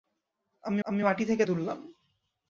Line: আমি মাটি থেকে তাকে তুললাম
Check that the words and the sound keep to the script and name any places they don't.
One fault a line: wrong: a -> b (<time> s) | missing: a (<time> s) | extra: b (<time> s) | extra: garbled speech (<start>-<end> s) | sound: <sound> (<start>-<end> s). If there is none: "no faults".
extra: আমি (0.8 s)
missing: তাকে (1.4 s)